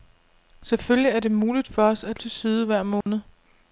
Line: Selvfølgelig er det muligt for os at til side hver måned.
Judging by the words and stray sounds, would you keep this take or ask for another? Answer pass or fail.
fail